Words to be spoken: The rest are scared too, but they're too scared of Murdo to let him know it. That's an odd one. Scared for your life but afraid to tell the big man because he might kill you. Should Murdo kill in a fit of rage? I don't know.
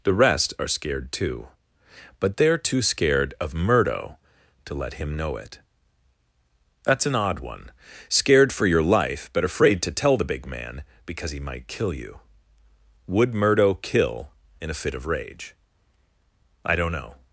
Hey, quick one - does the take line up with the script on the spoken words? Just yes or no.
no